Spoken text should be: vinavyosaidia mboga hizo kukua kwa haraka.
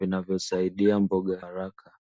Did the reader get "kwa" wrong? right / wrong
wrong